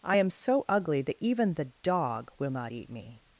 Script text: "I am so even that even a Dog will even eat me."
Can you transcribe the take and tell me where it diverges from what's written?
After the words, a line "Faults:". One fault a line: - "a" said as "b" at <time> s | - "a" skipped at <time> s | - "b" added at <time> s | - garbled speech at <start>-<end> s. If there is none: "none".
"I am so ugly that even the Dog will not eat me."
Faults:
- "even" said as "ugly" at 0.7 s
- "a" said as "the" at 1.5 s
- "even" said as "not" at 2.5 s